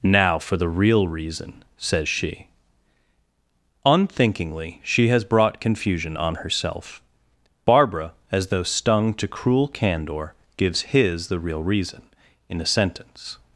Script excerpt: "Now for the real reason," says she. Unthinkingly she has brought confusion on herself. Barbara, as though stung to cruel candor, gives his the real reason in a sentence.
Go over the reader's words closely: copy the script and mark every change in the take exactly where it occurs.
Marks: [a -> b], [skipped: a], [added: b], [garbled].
"Now for the real reason," says she. Unthinkingly she has brought confusion on herself. Barbara, as though stung to cruel candor, gives his the real reason in a sentence.